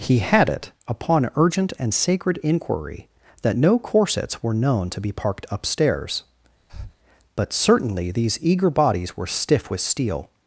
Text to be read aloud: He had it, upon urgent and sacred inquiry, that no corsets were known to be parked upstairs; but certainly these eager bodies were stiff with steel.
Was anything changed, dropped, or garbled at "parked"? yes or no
no